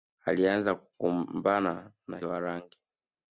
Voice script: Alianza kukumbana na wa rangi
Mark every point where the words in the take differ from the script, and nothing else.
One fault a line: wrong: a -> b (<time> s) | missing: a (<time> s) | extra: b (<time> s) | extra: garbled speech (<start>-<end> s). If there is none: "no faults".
no faults